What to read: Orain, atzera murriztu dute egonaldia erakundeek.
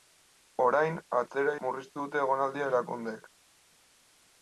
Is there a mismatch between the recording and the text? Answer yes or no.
no